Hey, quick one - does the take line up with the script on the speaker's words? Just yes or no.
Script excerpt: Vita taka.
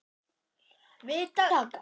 yes